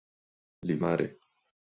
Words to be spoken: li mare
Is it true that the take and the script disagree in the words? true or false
false